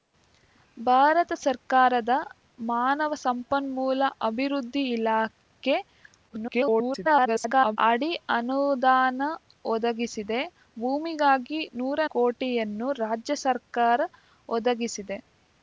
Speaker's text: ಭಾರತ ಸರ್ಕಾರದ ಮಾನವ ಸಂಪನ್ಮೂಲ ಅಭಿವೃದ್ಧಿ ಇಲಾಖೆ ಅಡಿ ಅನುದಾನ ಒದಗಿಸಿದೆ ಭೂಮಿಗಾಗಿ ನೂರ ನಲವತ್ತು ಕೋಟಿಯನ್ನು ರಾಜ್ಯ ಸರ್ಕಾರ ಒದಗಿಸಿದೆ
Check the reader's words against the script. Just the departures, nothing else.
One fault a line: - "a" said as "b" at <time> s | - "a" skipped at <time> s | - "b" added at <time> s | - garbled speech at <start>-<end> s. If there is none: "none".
- garbled speech at 6.3-7.8 s
- "ನಲವತ್ತು" skipped at 12.0 s